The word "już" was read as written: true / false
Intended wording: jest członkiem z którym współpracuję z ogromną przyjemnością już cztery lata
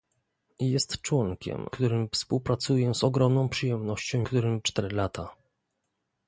false